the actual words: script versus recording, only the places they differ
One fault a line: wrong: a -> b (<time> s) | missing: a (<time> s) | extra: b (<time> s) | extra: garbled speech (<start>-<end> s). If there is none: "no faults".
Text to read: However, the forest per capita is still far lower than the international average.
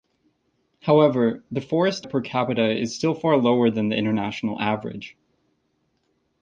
no faults